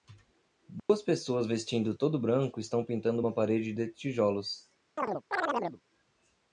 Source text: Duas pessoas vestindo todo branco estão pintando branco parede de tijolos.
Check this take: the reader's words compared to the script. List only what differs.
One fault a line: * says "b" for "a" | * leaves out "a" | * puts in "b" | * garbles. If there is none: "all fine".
* says "uma" for "branco"